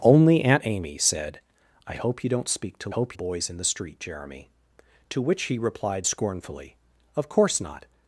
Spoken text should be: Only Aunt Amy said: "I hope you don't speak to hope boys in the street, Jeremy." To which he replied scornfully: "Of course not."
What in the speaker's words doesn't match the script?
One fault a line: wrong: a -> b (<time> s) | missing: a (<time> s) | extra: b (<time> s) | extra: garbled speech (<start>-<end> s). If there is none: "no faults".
no faults